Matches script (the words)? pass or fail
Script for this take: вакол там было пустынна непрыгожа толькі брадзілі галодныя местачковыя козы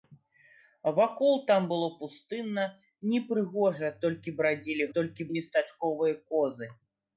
fail